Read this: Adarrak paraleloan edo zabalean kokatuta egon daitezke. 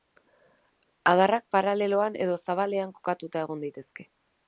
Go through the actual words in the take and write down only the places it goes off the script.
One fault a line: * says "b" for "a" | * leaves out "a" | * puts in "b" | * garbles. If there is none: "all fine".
all fine